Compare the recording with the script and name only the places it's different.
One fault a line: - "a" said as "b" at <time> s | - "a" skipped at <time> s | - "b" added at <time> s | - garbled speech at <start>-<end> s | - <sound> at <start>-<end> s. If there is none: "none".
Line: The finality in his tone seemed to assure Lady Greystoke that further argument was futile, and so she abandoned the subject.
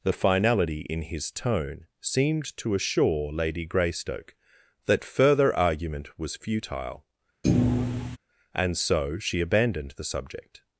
- thud at 7.4-8.2 s